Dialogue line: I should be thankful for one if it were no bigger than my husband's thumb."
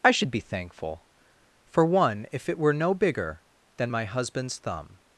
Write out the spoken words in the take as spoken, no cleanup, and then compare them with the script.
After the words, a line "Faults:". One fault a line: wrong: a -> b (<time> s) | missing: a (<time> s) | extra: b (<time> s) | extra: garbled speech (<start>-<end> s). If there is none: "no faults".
I should be thankful for one if it were no bigger than my husband's thumb."
Faults:
no faults